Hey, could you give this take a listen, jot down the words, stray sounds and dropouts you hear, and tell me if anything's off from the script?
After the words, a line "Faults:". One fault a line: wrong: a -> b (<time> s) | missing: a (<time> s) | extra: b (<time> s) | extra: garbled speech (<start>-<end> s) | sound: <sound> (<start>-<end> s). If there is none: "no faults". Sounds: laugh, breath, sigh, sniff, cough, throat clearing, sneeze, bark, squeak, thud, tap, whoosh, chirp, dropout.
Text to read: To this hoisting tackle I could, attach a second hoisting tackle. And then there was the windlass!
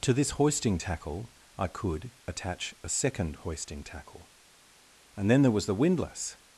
To this hoisting tackle I could, attach a second hoisting tackle. And then there was the windlass!
Faults:
no faults